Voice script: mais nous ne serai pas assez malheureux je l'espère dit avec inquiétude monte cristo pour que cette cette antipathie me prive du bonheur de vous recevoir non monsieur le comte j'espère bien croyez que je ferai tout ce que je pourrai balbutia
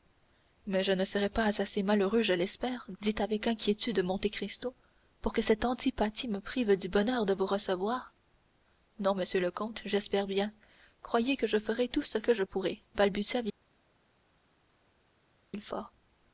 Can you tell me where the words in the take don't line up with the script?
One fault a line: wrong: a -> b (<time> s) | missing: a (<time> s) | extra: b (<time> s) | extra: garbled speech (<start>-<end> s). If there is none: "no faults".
wrong: nous -> je (0.8 s)
missing: cette (5.6 s)